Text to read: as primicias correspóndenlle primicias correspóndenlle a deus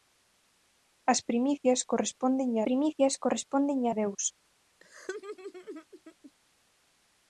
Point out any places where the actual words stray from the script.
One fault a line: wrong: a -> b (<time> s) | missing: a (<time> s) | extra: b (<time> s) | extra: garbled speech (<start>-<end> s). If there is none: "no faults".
no faults